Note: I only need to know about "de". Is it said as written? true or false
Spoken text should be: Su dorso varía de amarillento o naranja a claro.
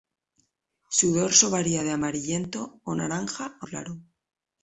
true